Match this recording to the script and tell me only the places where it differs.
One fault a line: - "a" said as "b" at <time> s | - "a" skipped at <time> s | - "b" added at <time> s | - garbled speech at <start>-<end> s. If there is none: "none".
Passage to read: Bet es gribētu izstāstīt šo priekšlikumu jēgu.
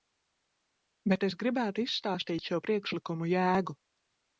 none